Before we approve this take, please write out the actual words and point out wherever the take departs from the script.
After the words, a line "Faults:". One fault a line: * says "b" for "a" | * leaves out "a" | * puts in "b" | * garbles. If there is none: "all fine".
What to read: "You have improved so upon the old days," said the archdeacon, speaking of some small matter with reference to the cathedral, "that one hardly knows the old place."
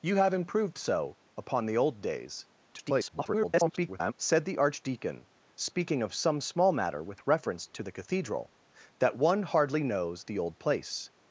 "You have improved so upon the old days," [garbled] said the archdeacon, speaking of some small matter with reference to the cathedral, "that one hardly knows the old place."
Faults:
* garbles